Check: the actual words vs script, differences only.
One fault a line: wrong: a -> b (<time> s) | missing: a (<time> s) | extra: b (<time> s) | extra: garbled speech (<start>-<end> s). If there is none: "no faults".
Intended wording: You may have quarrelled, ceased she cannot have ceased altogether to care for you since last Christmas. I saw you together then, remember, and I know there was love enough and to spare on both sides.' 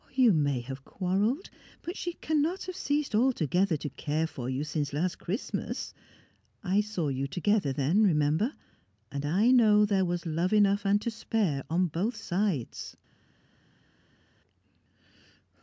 wrong: ceased -> but (1.8 s)